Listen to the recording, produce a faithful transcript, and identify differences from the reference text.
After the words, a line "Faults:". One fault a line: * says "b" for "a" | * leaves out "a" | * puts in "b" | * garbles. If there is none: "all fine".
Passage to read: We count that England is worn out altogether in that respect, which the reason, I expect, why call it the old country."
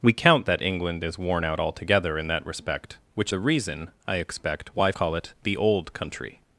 We count that England is worn out altogether in that respect, which the reason, I expect, why call it the old country."
Faults:
all fine